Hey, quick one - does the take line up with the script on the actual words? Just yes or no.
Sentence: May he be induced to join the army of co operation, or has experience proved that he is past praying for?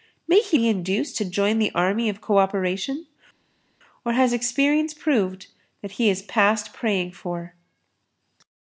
yes